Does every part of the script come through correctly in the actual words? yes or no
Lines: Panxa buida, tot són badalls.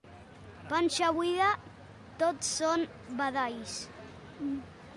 yes